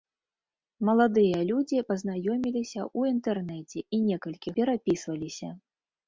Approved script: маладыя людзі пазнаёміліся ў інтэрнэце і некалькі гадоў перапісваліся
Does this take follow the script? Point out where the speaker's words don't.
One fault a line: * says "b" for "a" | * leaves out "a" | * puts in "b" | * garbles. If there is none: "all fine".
* leaves out "гадоў"